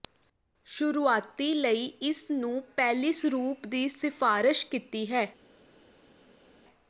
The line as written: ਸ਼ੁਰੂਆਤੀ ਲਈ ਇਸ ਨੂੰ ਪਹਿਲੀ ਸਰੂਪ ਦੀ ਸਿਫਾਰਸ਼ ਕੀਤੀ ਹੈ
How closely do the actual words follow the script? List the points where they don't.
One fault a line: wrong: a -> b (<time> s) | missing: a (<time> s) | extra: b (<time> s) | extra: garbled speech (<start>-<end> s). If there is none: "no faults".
no faults